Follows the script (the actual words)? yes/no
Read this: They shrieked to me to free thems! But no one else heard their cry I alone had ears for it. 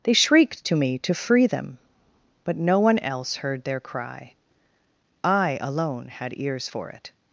no